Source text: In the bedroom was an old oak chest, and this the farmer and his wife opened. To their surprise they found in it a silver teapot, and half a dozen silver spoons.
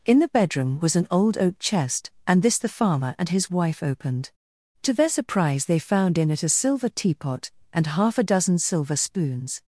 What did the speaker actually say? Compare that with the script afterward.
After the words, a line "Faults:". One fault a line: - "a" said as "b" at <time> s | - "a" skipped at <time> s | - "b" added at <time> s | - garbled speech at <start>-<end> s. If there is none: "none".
In the bedroom was an old oak chest, and this the farmer and his wife opened. To their surprise they found in it a silver teapot, and half a dozen silver spoons.
Faults:
none